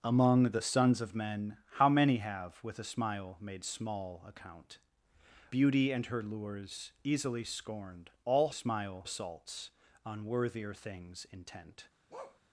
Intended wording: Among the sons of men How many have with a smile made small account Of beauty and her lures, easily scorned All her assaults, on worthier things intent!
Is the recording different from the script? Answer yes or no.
yes